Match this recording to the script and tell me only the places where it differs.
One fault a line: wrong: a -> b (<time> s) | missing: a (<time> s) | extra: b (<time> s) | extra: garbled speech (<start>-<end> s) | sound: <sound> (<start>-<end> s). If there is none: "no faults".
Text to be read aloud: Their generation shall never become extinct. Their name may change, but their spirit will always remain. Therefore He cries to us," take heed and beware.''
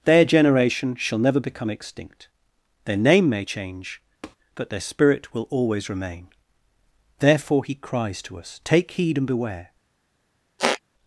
sound: tap (4.2-4.4 s)
sound: squeak (10.6-10.8 s)